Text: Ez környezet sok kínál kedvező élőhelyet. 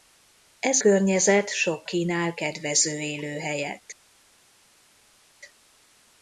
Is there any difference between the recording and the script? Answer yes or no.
no